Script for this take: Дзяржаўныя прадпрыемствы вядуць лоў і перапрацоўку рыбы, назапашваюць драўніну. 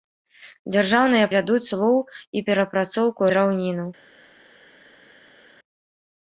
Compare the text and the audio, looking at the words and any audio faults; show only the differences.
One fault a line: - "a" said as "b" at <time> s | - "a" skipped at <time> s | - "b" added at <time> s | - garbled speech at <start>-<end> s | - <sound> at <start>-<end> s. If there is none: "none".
- "прадпрыемствы" skipped at 1.3 s
- "рыбы назапашваюць" skipped at 3.2 s